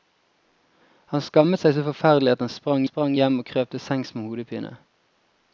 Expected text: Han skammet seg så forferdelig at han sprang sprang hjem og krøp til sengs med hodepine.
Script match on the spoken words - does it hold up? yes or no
yes